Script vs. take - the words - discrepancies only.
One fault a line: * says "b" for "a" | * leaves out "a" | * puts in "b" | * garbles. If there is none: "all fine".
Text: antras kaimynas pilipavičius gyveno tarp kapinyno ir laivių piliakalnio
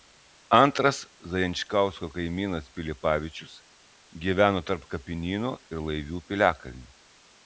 * puts in "zajančkausko"